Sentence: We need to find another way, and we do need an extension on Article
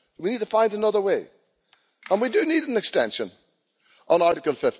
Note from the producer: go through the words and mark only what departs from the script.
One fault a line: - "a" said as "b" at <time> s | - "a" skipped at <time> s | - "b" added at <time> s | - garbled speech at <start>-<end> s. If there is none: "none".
none